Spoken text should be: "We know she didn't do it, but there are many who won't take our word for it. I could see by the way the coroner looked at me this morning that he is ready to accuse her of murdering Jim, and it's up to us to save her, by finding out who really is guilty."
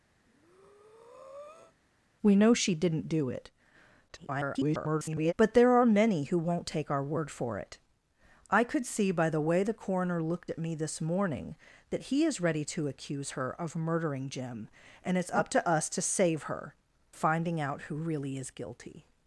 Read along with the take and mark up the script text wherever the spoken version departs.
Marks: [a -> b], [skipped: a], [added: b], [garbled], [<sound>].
[breath] "We know she didn't do it, [garbled] but there are many who won't take our word for it. I could see by the way the coroner looked at me this morning that he is ready to accuse her of murdering Jim, and it's up to us to save her, [skipped: by] finding out who really is guilty."